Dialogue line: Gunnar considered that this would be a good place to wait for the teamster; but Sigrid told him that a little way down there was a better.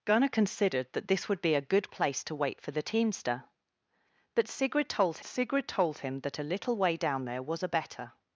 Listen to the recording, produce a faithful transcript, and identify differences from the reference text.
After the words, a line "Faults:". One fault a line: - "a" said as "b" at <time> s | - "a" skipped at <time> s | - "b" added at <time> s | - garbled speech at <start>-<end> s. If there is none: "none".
Gunnar considered that this would be a good place to wait for the teamster; but Sigrid told Sigrid told him that a little way down there was a better.
Faults:
- "Sigrid told" added at 5.2 s